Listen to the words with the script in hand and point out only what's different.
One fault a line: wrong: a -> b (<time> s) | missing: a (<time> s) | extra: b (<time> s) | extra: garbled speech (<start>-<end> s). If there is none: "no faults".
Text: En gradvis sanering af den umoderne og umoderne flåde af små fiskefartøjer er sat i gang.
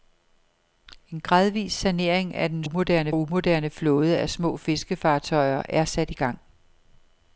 no faults